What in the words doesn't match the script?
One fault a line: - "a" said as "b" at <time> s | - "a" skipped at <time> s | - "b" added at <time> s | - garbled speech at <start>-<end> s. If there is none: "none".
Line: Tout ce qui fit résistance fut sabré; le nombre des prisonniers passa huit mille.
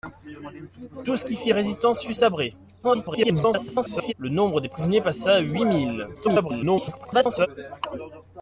- garbled speech at 2.8-4.1 s
- garbled speech at 6.1-7.5 s